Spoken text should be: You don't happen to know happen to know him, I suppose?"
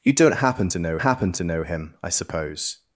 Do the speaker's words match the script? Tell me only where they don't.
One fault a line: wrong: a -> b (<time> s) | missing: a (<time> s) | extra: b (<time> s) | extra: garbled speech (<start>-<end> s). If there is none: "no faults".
no faults